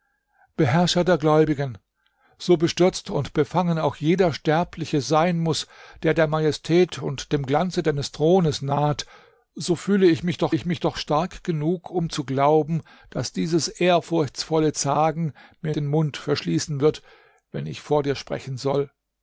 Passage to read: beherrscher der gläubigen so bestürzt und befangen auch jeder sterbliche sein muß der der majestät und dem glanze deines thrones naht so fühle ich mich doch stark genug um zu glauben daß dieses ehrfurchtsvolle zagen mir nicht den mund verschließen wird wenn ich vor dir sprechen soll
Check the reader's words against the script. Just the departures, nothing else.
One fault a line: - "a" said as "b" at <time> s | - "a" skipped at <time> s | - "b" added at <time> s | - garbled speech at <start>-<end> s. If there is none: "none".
- "ich mich doch" added at 10.5 s
- "nicht" skipped at 15.8 s